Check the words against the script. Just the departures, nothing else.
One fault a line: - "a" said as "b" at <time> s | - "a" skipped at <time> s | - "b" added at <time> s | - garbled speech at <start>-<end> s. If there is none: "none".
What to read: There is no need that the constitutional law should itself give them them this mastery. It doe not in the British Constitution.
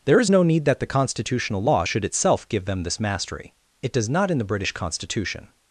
- "them" skipped at 2.8 s
- "doe" said as "does" at 3.9 s